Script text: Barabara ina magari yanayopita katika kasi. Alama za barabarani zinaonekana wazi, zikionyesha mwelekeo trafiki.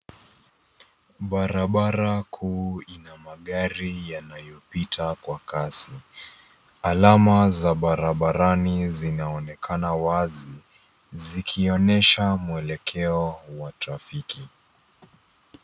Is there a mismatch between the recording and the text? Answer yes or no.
yes